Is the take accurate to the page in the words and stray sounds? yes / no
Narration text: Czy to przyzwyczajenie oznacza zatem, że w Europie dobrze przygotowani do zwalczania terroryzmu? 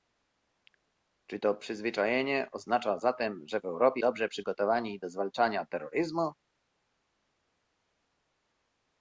yes